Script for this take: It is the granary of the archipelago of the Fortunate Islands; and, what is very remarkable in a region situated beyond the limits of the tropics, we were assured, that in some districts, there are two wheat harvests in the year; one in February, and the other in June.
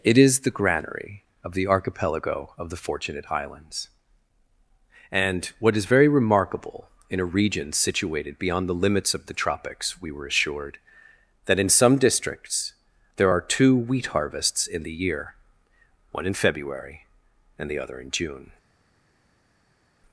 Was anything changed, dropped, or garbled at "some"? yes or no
no